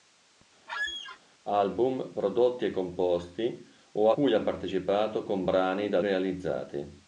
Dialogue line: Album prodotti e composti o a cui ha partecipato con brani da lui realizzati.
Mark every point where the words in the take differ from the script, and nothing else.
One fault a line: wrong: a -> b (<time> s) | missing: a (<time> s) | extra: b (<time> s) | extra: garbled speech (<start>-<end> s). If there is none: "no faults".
missing: a (4.1 s)
missing: lui (6.0 s)